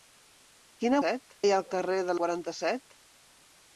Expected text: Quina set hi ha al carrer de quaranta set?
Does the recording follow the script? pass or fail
pass